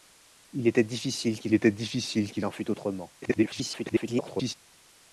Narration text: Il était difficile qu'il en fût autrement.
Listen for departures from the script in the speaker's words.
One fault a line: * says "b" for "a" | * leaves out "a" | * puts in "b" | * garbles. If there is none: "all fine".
* puts in "était difficile qu'il"
* garbles